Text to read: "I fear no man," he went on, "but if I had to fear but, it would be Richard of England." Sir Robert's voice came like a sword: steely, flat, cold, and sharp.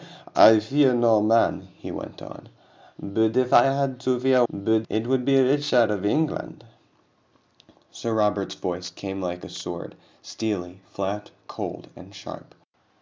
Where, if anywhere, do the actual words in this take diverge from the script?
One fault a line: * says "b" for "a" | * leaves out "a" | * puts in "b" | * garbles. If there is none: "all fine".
all fine